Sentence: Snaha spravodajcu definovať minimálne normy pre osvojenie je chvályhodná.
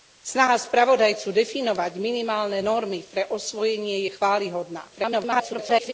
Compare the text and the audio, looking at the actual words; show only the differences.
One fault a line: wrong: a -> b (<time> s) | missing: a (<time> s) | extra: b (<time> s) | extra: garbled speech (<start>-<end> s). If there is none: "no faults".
extra: garbled speech (4.9-5.9 s)